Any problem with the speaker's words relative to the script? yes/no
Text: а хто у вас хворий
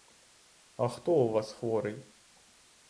no